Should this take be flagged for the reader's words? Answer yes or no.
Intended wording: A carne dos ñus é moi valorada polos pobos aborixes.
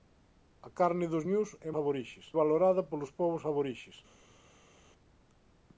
yes